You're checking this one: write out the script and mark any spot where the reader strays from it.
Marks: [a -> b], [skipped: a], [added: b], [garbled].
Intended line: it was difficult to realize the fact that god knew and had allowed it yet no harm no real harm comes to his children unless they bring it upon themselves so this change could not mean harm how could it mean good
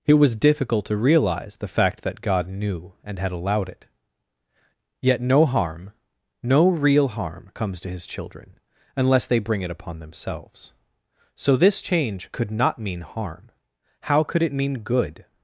it was difficult to realize the fact that god knew and had allowed it yet no harm no real harm comes to his children unless they bring it upon themselves so this change could not mean harm how could it mean good